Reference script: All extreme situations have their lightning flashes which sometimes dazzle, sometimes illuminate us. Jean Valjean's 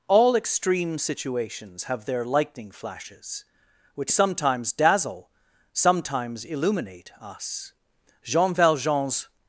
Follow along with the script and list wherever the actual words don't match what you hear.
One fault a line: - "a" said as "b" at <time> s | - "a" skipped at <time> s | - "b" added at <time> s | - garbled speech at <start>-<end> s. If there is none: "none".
none